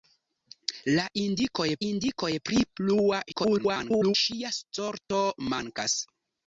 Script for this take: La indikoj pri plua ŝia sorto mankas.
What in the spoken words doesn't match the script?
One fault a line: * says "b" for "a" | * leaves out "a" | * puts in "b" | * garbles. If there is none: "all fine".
* puts in "indikoj"
* garbles